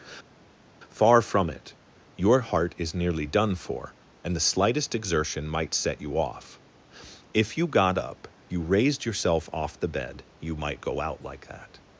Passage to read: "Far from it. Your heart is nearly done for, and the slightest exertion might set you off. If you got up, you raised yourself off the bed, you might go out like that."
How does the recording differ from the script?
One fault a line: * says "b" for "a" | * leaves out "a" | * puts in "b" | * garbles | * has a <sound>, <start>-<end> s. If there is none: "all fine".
all fine